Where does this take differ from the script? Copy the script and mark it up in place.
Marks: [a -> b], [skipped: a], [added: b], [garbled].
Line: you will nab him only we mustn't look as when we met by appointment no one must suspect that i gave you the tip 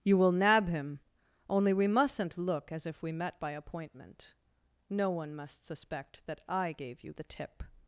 you will nab him only we mustn't look as [when -> if] we met by appointment no one must suspect that i gave you the tip